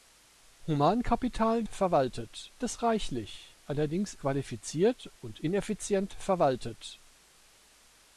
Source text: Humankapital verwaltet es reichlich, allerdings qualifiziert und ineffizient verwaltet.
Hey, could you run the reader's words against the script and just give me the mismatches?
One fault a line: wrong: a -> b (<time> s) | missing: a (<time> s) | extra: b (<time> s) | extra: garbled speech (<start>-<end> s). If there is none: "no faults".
no faults